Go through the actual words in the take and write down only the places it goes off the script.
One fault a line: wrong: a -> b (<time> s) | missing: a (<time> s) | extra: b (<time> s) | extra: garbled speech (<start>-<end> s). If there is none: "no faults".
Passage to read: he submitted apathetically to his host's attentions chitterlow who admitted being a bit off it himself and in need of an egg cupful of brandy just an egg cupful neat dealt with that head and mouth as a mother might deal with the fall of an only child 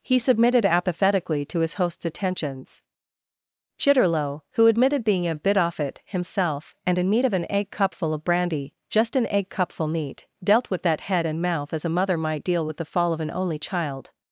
no faults